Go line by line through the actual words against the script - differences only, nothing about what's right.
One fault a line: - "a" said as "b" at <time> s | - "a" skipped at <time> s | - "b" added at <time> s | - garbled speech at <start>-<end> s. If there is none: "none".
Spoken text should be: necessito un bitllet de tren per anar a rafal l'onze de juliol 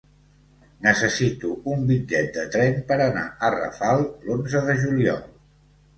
none